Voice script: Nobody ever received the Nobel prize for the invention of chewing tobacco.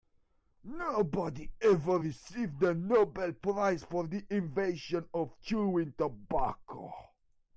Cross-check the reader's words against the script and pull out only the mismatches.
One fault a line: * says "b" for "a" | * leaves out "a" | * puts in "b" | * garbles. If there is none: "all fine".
all fine